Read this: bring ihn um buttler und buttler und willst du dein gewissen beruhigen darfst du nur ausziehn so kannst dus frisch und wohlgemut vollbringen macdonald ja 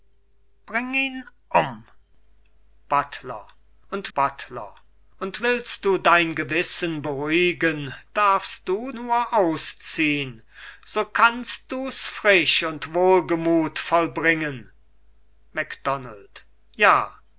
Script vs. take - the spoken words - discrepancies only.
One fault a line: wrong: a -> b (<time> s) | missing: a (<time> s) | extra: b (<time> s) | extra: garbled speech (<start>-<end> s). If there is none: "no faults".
no faults